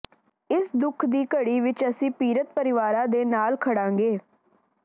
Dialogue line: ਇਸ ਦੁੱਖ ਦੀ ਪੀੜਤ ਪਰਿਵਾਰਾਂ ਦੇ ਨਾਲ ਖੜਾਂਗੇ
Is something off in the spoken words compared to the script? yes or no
yes